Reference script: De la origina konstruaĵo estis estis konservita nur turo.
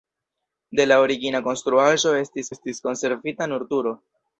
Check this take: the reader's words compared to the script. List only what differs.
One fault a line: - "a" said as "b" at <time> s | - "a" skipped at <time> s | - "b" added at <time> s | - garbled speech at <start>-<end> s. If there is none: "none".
none